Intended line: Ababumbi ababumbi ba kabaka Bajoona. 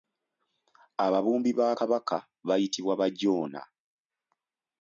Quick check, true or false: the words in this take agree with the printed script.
false